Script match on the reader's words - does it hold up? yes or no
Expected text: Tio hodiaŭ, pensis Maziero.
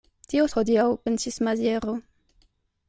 yes